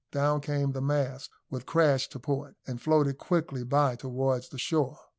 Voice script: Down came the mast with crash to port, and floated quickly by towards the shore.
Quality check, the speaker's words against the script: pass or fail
pass